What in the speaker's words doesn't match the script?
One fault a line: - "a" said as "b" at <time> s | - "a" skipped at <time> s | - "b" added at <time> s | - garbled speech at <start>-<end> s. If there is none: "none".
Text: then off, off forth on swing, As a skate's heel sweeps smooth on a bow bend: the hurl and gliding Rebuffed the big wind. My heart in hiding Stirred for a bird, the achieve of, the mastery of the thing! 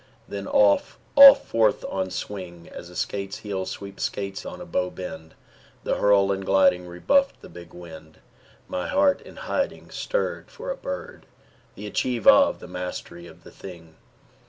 - "smooth" said as "skate's" at 4.0 s